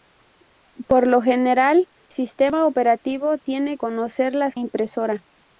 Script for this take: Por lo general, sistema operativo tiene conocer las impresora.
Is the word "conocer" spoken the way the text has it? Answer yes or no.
yes